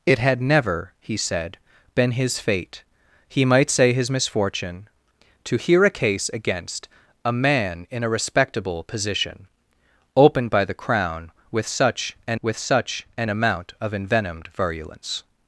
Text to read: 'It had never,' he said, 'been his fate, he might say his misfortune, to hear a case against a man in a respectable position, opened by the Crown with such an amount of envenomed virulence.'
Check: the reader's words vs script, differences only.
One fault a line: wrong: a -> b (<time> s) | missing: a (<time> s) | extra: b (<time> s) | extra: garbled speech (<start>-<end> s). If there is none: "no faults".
extra: with such an (12.4 s)